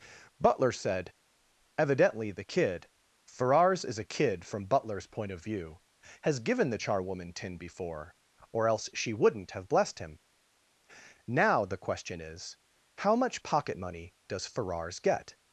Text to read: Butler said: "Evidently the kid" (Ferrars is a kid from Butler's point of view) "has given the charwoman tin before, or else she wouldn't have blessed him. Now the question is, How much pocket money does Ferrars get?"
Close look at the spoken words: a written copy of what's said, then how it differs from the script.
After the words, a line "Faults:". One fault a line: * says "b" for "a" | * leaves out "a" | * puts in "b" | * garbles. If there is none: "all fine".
Butler said: "Evidently the kid" (Ferrars is a kid from Butler's point of view) "has given the charwoman tin before, or else she wouldn't have blessed him. Now the question is, How much pocket money does Ferrars get?"
Faults:
all fine